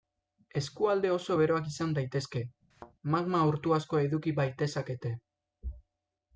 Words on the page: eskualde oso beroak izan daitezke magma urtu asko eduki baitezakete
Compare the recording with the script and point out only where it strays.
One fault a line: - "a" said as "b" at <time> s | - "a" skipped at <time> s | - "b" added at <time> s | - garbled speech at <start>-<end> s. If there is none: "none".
none